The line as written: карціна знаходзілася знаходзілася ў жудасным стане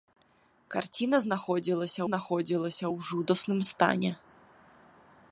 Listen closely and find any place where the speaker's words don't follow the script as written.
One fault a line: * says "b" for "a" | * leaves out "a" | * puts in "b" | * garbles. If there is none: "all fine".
all fine